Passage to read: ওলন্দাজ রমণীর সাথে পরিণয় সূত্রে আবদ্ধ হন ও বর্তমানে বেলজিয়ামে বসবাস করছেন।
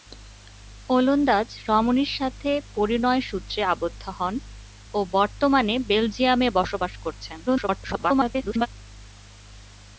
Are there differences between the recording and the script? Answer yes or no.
yes